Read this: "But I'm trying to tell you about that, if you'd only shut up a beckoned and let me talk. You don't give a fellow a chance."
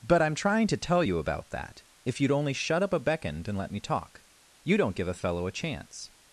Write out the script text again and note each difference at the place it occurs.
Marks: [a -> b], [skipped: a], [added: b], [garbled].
"But I'm trying to tell you about that, if you'd only shut up a beckoned and let me talk. You don't give a fellow a chance."